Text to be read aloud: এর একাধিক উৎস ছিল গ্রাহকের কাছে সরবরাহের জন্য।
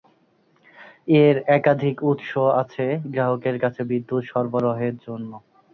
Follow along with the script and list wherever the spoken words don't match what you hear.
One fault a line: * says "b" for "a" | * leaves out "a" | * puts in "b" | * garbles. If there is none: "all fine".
* says "আছে" for "ছিল"
* puts in "বিদ্যুৎ"